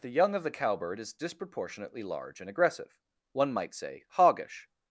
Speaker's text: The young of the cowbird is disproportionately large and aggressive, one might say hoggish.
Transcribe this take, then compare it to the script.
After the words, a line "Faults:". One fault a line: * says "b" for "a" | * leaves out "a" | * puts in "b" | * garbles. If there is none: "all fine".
The young of the cowbird is disproportionately large and aggressive, one might say hoggish.
Faults:
all fine